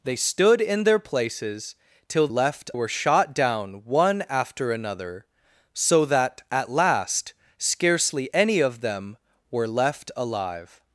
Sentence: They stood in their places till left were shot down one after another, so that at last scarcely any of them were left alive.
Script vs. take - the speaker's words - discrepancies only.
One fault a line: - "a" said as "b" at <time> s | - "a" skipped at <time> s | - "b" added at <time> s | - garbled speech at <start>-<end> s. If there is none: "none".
none